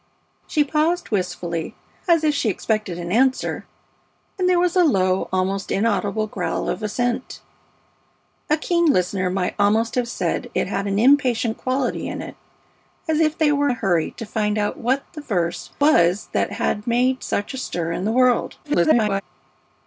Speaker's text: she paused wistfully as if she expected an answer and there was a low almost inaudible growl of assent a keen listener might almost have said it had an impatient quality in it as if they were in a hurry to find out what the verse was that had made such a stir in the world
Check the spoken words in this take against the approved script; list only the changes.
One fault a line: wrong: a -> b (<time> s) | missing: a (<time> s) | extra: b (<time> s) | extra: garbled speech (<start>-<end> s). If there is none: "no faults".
missing: in (13.7 s)
extra: garbled speech (18.6-19.2 s)